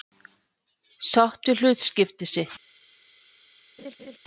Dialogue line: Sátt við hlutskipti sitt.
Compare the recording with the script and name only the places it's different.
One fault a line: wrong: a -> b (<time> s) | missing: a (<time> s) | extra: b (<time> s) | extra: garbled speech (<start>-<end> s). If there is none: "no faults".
no faults